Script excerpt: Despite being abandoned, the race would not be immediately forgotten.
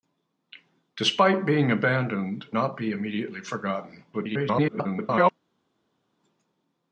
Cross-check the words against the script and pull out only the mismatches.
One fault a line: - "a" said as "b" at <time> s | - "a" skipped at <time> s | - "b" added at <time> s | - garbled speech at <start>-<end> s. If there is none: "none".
- "the race would" skipped at 2.5 s
- garbled speech at 4.1-5.3 s